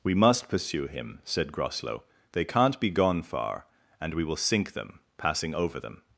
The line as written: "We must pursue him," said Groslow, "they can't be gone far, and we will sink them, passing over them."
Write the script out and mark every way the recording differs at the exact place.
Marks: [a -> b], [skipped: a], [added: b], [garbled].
"We must pursue him," said Groslow, "they can't be gone far, and we will sink them, passing over them."